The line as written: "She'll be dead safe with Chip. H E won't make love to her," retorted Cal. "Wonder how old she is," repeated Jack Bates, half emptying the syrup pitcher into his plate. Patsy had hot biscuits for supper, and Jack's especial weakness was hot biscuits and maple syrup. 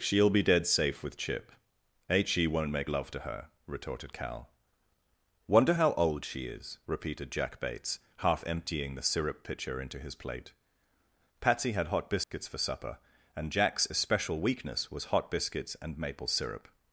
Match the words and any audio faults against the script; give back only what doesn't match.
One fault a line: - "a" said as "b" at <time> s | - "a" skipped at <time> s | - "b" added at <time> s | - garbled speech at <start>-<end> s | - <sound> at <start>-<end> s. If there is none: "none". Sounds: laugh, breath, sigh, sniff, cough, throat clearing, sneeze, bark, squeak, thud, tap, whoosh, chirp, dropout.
- dropout at 12.2-12.3 s